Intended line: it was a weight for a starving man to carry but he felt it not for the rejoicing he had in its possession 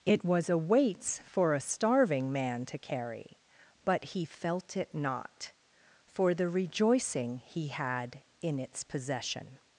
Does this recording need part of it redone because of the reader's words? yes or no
yes